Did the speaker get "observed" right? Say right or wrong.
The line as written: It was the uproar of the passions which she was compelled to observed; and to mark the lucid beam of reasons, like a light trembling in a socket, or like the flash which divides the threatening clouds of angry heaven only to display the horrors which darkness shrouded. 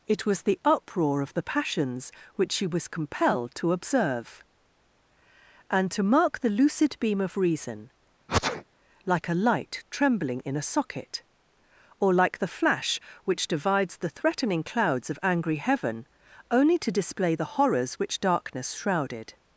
wrong